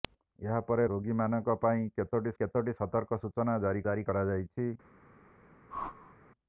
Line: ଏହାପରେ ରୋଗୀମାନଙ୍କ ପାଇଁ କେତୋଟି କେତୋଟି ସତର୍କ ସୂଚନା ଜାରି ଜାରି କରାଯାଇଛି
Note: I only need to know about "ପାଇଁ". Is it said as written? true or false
true